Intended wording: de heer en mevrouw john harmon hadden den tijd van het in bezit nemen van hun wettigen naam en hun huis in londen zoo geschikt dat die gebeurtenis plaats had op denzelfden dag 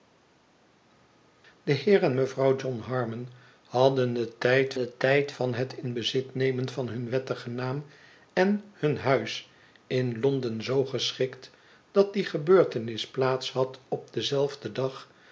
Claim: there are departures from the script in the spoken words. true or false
true